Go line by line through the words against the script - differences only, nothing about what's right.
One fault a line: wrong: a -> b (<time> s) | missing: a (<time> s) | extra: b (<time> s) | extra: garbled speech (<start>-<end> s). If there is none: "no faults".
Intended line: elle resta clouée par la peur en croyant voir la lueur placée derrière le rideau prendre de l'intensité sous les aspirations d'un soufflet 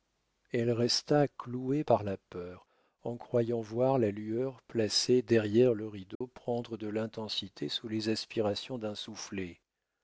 no faults